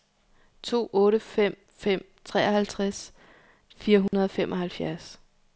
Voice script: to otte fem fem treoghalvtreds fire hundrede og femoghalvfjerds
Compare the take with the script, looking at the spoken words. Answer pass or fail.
pass